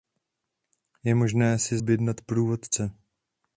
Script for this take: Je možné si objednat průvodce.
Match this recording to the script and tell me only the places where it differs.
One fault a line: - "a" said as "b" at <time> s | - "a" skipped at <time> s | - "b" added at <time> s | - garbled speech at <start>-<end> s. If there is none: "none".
none